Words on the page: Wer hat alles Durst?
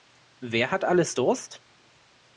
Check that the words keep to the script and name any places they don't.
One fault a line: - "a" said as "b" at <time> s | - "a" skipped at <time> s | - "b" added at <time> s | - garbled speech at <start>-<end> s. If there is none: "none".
none